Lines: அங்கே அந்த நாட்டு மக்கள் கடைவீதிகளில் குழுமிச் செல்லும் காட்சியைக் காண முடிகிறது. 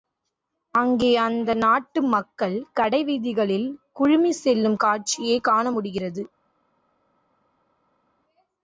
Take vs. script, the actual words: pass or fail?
pass